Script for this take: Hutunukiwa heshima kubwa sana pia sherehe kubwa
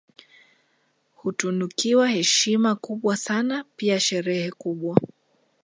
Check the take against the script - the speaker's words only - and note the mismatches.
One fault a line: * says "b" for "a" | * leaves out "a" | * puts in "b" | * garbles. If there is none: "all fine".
all fine